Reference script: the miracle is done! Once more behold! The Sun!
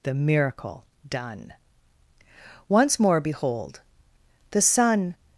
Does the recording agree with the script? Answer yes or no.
no